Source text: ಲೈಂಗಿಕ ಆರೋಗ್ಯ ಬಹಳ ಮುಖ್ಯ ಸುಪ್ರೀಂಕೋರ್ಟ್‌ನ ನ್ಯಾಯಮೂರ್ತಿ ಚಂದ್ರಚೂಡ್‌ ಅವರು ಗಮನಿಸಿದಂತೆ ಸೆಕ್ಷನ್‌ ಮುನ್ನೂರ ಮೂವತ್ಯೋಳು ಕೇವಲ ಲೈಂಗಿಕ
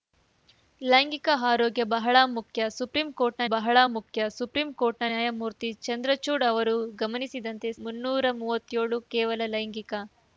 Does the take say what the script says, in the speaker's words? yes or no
no